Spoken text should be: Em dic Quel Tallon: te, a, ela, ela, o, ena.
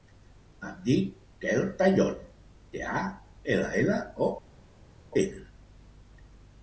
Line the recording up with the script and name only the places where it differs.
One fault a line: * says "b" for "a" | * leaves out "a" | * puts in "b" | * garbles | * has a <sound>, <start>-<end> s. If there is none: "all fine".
all fine